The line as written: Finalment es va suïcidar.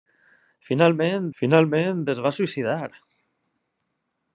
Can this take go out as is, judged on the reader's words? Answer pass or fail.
fail